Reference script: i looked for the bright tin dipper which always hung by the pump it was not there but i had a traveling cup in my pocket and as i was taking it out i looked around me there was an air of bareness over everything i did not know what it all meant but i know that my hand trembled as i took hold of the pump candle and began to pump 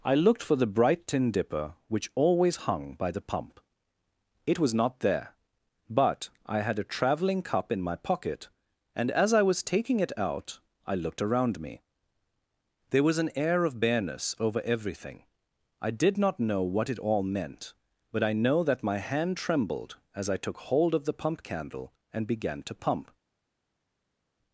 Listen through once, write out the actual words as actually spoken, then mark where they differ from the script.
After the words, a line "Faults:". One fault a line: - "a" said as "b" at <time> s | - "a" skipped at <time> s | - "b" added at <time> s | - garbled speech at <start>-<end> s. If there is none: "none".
i looked for the bright tin dipper which always hung by the pump it was not there but i had a traveling cup in my pocket and as i was taking it out i looked around me there was an air of bareness over everything i did not know what it all meant but i know that my hand trembled as i took hold of the pump candle and began to pump
Faults:
none